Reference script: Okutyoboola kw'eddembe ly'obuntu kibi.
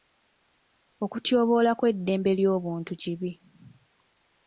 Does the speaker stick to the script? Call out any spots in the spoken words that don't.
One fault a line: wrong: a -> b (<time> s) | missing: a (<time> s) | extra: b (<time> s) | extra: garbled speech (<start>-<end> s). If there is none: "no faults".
no faults